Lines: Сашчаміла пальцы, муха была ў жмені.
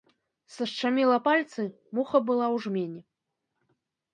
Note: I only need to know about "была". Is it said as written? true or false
true